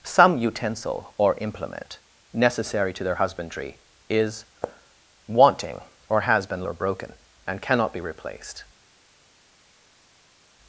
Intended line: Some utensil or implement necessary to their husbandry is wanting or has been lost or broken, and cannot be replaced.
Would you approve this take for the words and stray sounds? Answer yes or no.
no